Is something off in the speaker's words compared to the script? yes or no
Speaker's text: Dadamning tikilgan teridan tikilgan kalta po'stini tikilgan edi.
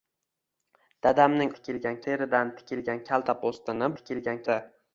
no